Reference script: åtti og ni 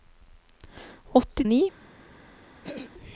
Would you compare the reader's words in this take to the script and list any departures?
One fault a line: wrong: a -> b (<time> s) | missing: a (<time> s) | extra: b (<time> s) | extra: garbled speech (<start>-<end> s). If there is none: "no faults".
no faults